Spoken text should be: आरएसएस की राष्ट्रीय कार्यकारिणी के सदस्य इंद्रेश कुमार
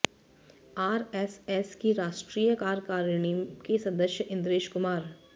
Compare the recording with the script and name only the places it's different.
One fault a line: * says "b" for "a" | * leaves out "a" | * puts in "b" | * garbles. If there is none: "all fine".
all fine